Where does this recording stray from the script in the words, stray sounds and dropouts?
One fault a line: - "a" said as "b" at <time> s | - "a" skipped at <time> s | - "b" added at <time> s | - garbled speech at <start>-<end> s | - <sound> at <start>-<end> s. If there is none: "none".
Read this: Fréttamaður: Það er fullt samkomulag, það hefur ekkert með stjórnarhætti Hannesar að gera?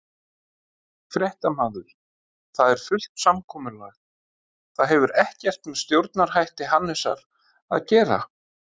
none